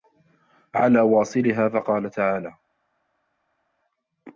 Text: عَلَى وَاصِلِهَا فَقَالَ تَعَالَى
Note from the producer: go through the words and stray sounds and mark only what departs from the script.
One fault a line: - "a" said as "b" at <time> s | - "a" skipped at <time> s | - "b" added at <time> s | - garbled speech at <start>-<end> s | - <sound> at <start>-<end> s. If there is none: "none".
none